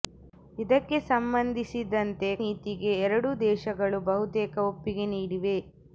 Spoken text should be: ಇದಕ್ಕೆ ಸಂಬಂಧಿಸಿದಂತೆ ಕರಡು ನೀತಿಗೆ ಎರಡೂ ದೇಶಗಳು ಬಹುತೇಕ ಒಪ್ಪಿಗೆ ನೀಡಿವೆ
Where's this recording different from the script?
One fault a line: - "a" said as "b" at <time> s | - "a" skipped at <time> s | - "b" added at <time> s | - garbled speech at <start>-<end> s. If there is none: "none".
- "ಕರಡು" skipped at 2.3 s